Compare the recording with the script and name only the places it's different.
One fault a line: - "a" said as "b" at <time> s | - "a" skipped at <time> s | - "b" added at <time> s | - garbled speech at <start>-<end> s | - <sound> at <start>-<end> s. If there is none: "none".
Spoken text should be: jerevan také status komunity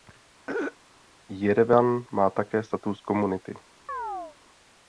- throat clearing at 0.5-0.8 s
- "má" added at 2.1 s
- chirp at 3.9-4.4 s